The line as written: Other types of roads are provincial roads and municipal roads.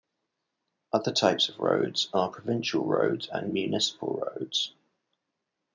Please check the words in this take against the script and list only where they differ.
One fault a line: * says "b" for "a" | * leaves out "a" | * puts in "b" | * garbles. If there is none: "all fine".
all fine